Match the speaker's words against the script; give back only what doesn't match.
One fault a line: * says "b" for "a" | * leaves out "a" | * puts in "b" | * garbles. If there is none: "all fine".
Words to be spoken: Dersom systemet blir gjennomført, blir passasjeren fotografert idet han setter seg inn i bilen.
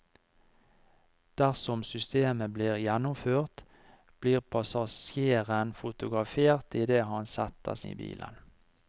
* leaves out "seg inn"